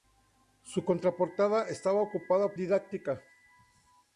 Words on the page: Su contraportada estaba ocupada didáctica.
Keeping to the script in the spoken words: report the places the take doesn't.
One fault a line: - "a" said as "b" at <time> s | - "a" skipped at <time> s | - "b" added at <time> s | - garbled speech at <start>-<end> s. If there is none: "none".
none